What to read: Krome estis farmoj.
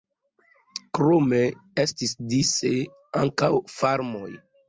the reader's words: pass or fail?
fail